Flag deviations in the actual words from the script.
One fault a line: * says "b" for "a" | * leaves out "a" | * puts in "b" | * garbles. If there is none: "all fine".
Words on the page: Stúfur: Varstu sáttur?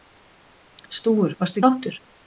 all fine